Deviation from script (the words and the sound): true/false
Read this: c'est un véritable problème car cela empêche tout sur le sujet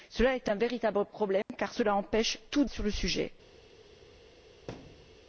true